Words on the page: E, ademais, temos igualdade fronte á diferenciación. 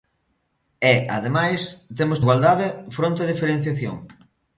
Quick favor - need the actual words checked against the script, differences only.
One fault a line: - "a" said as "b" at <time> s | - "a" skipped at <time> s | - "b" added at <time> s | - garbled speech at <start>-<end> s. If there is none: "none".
none